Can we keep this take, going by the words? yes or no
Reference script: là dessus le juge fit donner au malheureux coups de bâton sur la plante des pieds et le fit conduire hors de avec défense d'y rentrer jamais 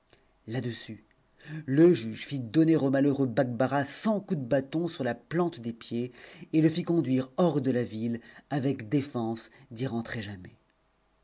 no